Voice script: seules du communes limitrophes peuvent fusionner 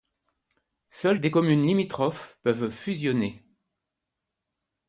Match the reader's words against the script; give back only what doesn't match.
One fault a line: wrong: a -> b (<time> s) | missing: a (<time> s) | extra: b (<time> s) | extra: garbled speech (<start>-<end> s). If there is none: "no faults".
wrong: du -> des (1.2 s)